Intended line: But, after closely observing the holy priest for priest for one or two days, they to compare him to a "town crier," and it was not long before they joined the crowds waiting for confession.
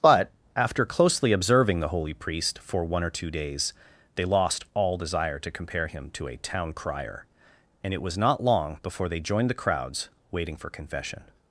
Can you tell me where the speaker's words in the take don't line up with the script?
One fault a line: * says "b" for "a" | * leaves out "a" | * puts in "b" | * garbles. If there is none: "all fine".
* leaves out "priest for"
* puts in "lost all desire"